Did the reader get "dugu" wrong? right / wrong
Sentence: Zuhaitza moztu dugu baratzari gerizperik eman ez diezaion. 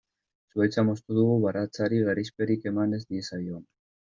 right